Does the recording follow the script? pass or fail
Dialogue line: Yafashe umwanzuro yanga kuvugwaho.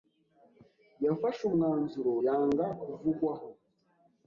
pass